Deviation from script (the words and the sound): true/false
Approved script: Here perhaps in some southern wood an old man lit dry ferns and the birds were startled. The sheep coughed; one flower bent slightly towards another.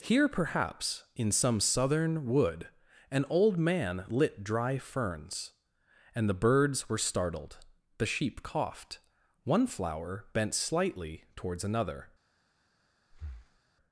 true